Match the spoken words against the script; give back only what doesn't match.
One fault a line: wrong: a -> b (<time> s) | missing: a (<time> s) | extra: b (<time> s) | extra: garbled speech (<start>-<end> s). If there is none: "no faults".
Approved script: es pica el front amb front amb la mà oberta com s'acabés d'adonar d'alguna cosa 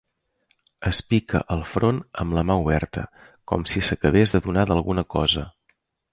missing: front amb (2.4 s)
extra: si (3.7 s)